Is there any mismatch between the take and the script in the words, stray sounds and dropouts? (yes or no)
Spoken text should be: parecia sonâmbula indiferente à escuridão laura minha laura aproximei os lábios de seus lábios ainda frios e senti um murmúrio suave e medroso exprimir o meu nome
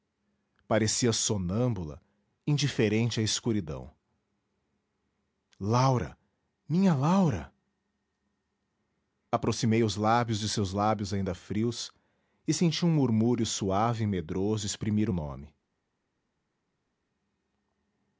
yes